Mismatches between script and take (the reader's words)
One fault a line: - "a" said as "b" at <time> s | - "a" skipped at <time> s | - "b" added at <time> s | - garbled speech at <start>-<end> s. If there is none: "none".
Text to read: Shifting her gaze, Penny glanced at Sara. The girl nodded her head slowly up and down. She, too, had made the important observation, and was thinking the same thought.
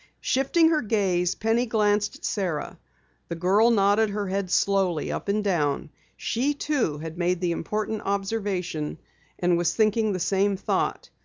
none